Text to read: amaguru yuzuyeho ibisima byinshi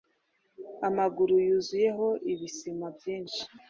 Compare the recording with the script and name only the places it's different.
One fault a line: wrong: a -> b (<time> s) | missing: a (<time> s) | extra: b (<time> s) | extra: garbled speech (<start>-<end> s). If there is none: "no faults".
no faults